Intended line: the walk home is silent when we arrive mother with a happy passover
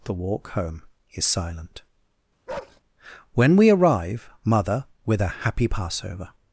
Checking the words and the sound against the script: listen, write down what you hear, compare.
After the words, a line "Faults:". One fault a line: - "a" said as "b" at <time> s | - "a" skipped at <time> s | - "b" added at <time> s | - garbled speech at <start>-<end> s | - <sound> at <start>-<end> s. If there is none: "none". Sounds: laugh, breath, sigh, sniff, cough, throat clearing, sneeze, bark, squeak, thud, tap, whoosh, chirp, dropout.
the walk home is silent when we arrive mother with a happy passover
Faults:
- bark at 2.5-2.8 s